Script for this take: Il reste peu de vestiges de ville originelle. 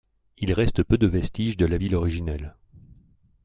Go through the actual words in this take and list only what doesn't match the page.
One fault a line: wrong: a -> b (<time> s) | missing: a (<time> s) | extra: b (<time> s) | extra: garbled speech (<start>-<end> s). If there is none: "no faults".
extra: la (1.7 s)